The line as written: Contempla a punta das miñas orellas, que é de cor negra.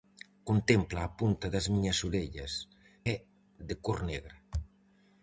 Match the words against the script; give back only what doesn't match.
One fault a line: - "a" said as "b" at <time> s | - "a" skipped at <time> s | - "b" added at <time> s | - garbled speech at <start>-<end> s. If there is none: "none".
- "que" skipped at 2.5 s